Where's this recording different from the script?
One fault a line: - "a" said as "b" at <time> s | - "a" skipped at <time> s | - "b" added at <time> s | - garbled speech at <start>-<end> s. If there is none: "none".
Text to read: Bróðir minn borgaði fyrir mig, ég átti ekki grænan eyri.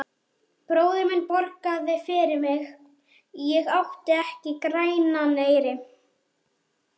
none